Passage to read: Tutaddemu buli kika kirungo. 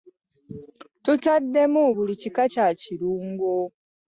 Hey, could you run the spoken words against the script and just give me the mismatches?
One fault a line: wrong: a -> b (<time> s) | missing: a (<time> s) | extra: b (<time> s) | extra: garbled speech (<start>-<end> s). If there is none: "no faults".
extra: kya (2.5 s)